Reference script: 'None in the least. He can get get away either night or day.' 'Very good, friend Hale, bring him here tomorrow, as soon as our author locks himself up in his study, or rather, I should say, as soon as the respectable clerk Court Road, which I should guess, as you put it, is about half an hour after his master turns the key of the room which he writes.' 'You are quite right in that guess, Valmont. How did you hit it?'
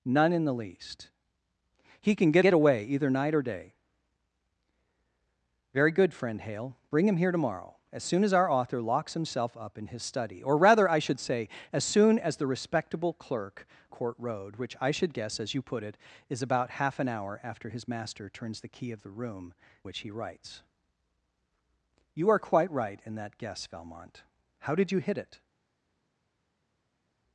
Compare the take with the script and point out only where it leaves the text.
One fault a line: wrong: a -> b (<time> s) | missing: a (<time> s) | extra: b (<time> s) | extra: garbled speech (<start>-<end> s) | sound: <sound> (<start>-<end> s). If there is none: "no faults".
no faults